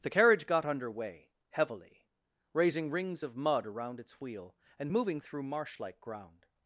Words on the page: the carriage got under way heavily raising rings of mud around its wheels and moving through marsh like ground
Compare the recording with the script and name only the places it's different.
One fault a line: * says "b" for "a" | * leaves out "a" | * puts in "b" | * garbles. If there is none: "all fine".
* says "wheel" for "wheels"